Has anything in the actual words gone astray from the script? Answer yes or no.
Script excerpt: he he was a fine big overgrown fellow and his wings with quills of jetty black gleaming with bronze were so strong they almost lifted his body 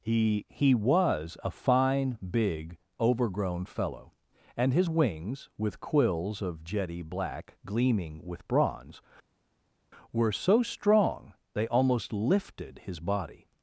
no